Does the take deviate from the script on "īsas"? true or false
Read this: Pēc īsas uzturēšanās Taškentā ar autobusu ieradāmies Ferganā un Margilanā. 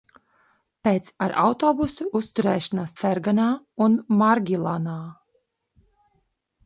true